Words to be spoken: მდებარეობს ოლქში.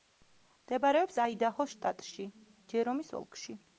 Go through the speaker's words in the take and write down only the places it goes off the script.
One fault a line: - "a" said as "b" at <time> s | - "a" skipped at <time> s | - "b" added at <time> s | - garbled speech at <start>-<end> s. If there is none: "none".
- "აიდაჰოს შტატში ჯერომის" added at 1.2 s